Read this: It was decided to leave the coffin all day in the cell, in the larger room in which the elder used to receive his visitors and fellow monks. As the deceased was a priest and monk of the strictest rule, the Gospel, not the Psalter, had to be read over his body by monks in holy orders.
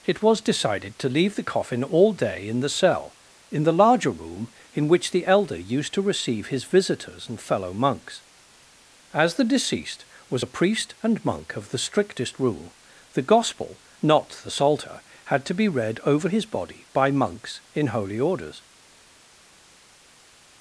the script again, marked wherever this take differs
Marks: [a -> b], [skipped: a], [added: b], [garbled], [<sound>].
It was decided to leave the coffin all day in the cell, in the larger room in which the elder used to receive his visitors and fellow monks. As the deceased was a priest and monk of the strictest rule, the Gospel, not the Psalter, had to be read over his body by monks in holy orders.